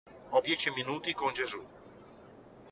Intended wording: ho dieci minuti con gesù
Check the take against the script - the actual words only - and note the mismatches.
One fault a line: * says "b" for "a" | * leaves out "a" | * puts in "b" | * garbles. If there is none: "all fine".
all fine